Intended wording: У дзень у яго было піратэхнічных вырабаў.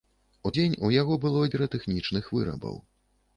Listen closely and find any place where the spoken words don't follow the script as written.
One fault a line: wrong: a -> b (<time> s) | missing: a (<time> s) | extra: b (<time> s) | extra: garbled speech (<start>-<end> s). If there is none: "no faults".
no faults